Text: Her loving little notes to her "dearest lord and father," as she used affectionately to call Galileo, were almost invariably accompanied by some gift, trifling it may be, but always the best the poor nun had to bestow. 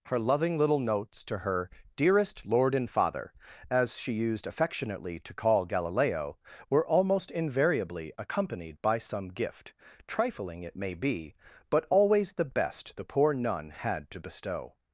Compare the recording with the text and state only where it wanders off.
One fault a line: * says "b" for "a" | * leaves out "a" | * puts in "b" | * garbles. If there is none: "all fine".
all fine